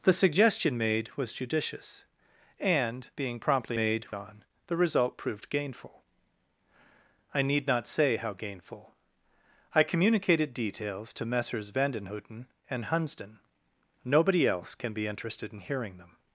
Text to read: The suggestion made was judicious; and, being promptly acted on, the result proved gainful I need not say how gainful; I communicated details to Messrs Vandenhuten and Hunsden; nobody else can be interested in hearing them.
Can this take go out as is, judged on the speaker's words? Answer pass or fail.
fail